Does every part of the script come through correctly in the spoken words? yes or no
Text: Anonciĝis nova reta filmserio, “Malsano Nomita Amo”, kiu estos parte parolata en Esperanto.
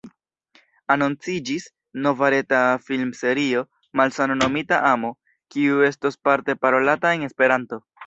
yes